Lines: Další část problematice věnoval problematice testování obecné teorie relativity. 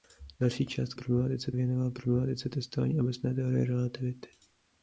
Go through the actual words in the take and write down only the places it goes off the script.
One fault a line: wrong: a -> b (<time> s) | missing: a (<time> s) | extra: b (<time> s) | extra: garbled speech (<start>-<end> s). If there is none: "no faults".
no faults